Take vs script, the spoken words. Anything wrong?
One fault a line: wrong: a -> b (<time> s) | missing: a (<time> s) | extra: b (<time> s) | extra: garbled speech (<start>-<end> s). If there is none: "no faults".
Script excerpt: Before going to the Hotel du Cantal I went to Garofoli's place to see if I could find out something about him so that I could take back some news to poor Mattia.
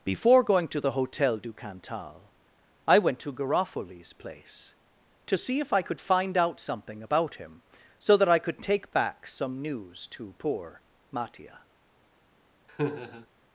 no faults